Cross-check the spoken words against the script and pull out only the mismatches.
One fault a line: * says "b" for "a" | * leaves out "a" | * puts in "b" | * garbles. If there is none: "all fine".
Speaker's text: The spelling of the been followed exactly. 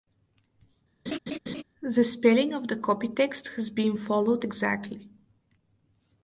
* puts in "copy text has"